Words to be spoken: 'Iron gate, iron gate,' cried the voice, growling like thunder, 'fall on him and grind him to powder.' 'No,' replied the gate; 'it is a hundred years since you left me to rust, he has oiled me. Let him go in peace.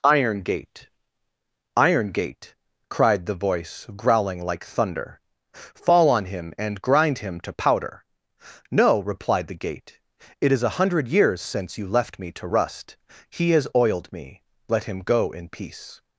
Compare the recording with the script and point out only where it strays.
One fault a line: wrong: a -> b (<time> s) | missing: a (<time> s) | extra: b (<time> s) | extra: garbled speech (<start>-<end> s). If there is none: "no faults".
no faults